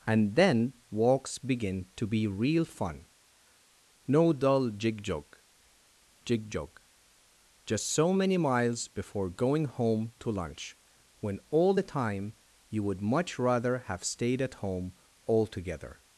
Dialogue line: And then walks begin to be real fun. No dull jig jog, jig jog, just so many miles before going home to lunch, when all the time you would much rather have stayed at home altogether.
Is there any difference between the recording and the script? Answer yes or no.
no